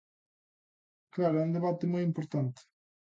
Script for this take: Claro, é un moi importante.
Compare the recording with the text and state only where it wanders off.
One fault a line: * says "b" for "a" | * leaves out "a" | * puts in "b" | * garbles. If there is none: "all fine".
* puts in "debate"